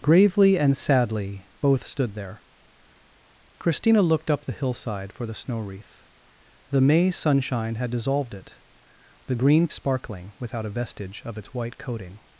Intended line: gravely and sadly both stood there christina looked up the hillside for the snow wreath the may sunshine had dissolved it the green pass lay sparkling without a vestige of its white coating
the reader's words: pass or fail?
fail